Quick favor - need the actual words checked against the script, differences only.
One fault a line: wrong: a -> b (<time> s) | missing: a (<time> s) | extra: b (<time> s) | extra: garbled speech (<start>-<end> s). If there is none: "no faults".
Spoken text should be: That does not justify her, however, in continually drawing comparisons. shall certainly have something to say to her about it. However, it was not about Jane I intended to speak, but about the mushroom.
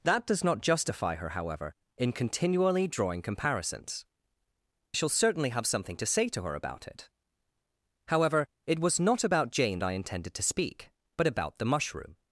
no faults